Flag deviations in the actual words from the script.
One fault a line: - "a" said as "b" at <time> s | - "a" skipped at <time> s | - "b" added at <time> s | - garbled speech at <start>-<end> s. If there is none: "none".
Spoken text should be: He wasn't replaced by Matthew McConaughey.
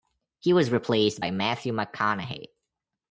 - "wasn't" said as "was" at 0.5 s